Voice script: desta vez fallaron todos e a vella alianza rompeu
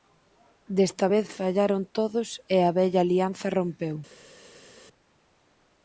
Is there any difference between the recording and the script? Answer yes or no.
no